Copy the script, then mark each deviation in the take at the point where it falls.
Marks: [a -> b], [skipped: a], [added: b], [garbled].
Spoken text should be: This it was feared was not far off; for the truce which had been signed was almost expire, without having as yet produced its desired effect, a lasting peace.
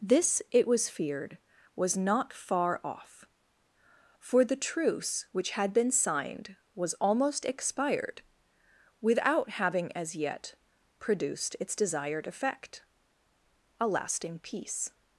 This it was feared was not far off; for the truce which had been signed was almost [expire, -> expired] without having as yet produced its desired effect, a lasting peace.